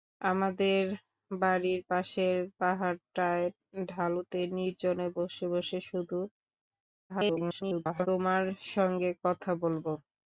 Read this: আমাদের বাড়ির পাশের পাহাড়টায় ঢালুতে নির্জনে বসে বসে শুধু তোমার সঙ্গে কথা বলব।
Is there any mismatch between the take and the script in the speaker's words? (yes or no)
yes